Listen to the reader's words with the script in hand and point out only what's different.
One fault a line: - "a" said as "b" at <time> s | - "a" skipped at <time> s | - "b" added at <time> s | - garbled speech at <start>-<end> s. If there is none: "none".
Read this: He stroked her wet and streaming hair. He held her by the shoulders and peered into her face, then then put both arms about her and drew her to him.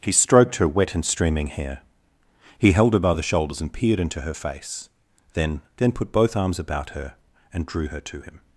none